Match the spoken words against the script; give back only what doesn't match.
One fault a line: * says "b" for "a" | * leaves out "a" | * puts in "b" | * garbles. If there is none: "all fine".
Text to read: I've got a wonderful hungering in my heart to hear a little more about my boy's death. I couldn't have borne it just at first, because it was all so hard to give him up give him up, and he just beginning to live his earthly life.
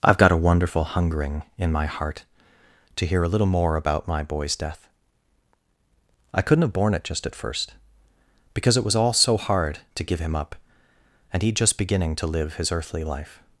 * leaves out "give him up"